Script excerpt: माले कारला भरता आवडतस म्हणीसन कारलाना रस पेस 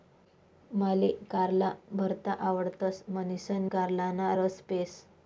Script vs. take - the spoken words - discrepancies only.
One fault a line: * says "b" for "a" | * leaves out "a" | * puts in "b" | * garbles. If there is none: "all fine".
all fine